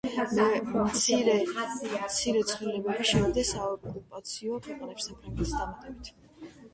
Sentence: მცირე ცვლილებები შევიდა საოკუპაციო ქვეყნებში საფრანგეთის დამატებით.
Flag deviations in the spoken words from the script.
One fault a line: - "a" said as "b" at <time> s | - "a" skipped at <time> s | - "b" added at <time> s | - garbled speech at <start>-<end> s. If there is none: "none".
none